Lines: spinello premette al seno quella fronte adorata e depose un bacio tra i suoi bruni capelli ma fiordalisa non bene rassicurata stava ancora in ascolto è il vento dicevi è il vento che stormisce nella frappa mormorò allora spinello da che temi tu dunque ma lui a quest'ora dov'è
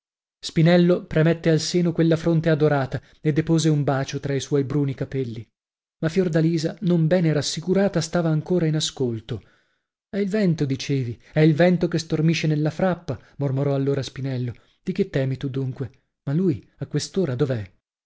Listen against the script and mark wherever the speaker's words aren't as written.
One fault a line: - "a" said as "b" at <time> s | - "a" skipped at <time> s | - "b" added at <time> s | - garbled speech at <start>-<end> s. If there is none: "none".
- "da" said as "di" at 14.8 s